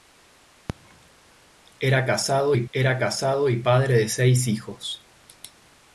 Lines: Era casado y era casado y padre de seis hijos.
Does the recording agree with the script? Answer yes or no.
yes